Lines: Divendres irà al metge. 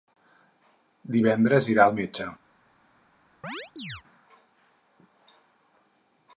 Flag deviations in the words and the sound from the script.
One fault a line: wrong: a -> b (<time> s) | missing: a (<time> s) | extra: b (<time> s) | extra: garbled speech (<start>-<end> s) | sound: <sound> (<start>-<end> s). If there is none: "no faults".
sound: chirp (3.4-4.0 s)